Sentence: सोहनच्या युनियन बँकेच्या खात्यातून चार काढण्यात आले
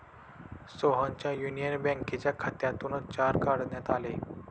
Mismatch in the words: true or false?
false